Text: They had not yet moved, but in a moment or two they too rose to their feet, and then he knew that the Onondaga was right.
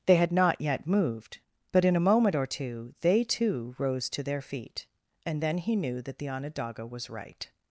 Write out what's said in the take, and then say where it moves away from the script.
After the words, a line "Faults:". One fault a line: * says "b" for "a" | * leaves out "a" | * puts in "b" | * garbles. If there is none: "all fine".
They had not yet moved, but in a moment or two they too rose to their feet, and then he knew that the Onondaga was right.
Faults:
all fine